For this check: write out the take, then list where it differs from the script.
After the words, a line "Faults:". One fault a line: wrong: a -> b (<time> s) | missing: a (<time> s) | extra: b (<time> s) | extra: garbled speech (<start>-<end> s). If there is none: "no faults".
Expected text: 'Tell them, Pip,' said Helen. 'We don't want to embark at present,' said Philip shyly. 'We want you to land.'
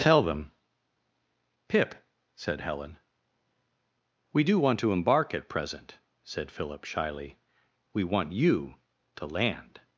'Tell them, Pip,' said Helen. 'We do want to embark at present,' said Philip shyly. 'We want you to land.'
Faults:
wrong: don't -> do (4.4 s)